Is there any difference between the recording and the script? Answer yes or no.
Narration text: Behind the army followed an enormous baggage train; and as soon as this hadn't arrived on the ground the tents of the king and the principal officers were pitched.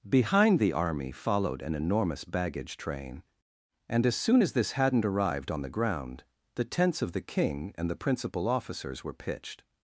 no